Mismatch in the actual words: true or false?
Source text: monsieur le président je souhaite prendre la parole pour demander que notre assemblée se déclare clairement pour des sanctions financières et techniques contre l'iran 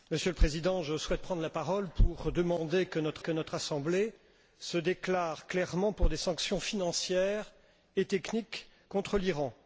true